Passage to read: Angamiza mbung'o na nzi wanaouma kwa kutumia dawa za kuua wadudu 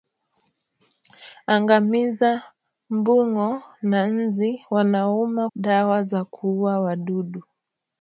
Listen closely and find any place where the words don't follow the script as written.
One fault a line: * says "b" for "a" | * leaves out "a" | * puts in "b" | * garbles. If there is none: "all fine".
* leaves out "kwa kutumia"